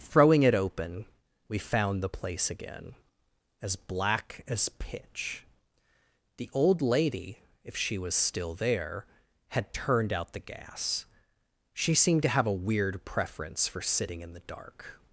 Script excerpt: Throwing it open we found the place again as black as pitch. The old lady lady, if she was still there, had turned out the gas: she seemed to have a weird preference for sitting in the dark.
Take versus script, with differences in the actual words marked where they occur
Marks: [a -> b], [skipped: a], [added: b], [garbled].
Throwing it open we found the place again as black as pitch. The old lady [skipped: lady,] if she was still there, had turned out the gas: she seemed to have a weird preference for sitting in the dark.